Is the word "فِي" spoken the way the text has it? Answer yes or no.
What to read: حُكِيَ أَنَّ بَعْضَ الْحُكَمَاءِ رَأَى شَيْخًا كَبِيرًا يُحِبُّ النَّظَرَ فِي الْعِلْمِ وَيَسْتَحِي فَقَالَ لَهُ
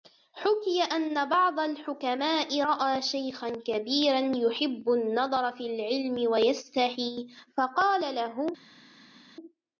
yes